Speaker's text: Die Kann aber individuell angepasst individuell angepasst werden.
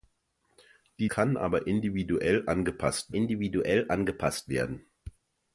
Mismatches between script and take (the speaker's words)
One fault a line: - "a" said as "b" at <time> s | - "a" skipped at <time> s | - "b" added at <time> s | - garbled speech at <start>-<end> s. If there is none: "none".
none